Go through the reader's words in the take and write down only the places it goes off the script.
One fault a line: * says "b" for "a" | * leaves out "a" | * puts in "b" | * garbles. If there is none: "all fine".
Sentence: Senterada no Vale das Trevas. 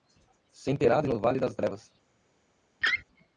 all fine